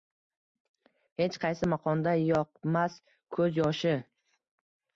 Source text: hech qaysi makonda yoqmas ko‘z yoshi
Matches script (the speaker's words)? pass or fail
pass